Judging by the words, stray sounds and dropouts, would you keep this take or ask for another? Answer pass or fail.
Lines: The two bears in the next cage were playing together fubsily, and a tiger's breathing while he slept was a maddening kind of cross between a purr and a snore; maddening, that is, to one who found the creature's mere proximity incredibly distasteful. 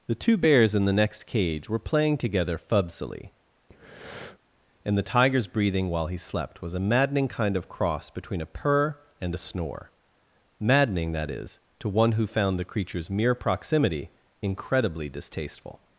fail